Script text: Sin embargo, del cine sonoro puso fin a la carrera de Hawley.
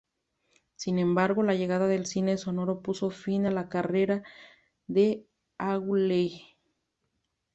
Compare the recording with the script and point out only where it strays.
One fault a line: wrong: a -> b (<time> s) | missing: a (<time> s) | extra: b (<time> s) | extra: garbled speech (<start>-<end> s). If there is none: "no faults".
extra: la llegada (1.4 s)